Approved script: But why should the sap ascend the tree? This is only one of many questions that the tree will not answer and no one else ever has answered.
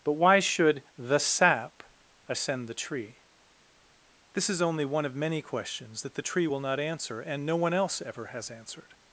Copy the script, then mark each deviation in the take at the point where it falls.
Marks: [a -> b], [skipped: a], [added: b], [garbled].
But why should the sap ascend the tree? This is only one of many questions that the tree will not answer and no one else ever has answered.